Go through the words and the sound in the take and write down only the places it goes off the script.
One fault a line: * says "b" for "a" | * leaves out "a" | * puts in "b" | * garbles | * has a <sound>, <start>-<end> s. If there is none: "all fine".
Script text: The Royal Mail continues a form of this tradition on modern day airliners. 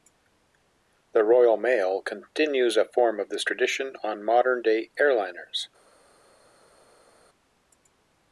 all fine